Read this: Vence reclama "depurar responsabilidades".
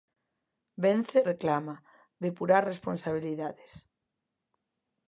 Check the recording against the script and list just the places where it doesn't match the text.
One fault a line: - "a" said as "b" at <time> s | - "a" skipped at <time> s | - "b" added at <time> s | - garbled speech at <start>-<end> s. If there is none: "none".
none